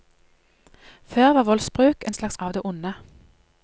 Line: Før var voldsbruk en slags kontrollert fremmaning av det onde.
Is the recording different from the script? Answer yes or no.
yes